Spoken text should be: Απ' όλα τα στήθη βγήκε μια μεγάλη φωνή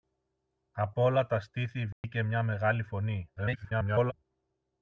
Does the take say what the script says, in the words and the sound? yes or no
no